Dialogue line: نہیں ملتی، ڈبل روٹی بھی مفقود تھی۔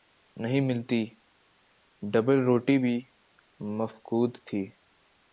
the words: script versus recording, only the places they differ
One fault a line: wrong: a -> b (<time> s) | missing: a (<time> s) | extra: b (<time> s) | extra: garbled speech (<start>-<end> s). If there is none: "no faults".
no faults